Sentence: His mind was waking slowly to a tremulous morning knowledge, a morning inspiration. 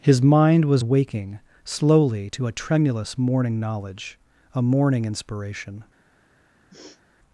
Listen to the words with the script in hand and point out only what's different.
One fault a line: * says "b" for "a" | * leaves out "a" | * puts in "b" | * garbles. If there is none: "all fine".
all fine